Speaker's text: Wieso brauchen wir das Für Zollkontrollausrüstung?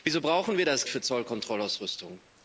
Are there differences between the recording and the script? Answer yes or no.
no